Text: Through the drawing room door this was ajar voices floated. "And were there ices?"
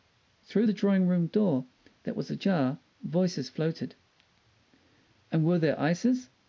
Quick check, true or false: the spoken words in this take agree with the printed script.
false